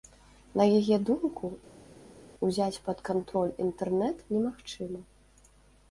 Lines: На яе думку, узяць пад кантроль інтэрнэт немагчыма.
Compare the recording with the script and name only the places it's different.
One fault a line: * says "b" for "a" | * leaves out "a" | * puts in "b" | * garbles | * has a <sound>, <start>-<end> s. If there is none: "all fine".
all fine